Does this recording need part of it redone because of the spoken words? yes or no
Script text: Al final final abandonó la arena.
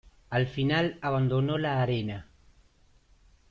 yes